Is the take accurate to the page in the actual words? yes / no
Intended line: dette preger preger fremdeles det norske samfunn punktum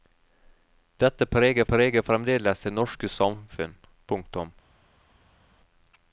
yes